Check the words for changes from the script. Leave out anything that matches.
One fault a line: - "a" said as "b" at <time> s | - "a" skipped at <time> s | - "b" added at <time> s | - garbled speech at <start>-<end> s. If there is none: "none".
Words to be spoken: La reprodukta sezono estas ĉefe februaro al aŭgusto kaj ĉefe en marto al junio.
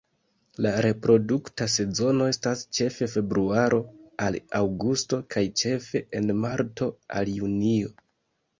none